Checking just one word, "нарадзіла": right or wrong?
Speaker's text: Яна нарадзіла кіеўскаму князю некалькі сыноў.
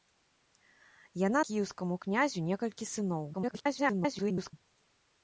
wrong